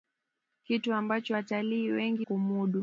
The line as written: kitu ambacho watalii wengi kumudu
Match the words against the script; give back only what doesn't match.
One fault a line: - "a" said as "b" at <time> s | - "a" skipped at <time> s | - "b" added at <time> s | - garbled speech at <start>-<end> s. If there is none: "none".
none